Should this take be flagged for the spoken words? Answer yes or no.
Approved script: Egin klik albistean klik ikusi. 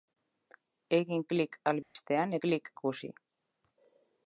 no